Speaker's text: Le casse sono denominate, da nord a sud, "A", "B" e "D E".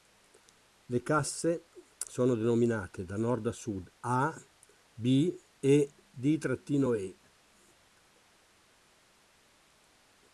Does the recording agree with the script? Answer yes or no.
yes